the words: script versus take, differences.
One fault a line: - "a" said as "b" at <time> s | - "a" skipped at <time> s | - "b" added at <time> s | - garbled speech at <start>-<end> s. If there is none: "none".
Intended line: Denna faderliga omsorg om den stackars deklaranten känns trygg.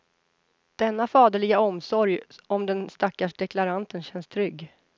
none